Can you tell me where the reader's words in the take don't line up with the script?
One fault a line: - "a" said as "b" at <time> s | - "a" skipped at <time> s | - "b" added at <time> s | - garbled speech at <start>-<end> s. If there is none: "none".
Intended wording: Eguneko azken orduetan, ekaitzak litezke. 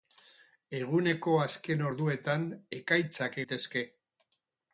none